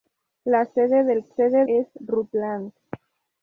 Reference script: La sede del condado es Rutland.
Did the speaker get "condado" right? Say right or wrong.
wrong